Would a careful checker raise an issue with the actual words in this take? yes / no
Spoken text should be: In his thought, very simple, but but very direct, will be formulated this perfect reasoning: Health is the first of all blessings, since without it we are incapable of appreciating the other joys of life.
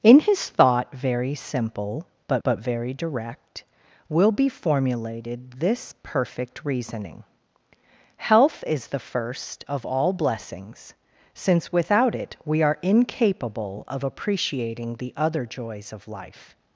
no